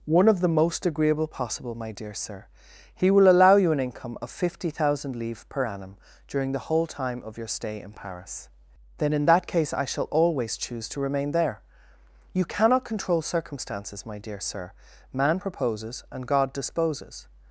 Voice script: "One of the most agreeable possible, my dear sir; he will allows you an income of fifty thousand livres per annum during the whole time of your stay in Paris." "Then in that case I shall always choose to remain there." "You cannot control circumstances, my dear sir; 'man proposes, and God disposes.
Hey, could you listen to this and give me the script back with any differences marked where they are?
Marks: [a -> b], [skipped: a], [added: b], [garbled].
"One of the most agreeable possible, my dear sir; he will [allows -> allow] you an income of fifty thousand livres per annum during the whole time of your stay in Paris." "Then in that case I shall always choose to remain there." "You cannot control circumstances, my dear sir; 'man proposes, and God disposes.